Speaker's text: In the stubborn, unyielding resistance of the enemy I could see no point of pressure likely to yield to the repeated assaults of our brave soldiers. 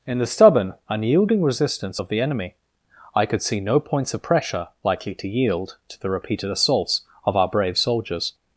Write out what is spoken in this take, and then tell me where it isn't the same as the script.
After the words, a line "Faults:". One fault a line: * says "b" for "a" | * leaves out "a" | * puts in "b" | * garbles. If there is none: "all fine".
In the stubborn, unyielding resistance of the enemy I could see no points of pressure likely to yield to the repeated assaults of our brave soldiers.
Faults:
* says "points" for "point"